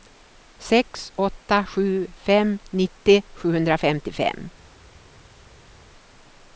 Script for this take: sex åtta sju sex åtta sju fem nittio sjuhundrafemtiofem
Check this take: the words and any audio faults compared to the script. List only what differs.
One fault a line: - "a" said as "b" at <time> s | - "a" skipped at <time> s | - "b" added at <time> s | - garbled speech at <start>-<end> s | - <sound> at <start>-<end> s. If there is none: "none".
- "sex åtta sju" skipped at 2.1 s